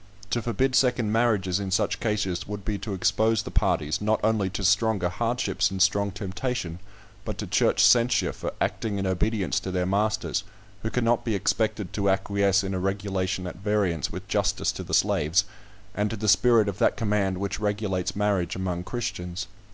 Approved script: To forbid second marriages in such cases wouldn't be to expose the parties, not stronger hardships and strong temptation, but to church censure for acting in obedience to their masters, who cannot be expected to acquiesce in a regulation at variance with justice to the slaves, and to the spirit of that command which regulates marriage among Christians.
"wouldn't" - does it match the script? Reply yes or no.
no